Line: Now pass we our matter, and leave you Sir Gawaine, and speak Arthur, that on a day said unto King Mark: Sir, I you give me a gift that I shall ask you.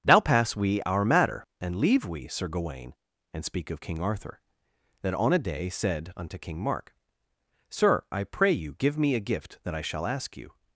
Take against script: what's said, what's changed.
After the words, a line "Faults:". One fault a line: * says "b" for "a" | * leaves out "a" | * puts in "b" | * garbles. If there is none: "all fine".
Now pass we our matter, and leave we Sir Gawaine, and speak of King Arthur, that on a day said unto King Mark: Sir, I pray you give me a gift that I shall ask you.
Faults:
* says "we" for "you"
* puts in "of King"
* puts in "pray"